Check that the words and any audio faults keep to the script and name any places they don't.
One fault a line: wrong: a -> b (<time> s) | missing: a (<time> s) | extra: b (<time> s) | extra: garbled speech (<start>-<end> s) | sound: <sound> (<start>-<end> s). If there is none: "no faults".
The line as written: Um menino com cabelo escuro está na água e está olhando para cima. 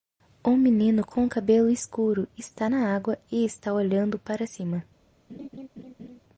sound: laugh (5.3-6.2 s)